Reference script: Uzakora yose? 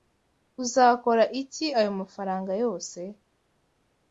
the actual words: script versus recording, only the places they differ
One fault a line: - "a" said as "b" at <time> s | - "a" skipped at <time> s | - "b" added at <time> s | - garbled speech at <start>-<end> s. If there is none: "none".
- "iki ayo mafaranga" added at 1.4 s